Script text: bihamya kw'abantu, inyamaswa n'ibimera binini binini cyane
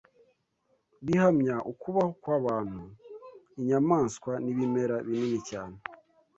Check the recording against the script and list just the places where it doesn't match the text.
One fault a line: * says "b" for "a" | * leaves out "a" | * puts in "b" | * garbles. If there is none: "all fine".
* puts in "ukubaho"
* leaves out "binini"